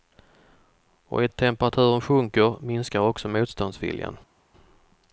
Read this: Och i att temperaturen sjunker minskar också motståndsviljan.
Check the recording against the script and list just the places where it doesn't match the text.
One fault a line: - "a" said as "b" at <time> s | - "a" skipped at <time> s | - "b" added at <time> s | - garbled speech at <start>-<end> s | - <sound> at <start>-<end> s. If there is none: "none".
none